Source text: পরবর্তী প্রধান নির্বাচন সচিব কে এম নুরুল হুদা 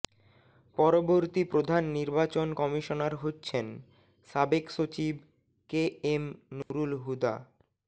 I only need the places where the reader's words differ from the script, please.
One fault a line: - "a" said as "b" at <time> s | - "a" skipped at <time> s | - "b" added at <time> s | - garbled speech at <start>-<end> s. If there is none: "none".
- "কমিশনার হচ্ছেন সাবেক" added at 2.6 s